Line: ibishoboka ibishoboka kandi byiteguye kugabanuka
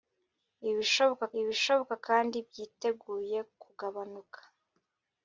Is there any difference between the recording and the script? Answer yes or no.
no